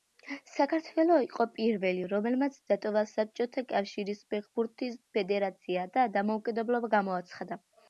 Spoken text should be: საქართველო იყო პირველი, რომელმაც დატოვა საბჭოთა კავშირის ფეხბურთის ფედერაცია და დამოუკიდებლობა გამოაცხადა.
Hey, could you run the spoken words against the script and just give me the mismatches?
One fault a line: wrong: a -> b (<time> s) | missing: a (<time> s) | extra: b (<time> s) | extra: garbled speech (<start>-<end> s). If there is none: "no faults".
no faults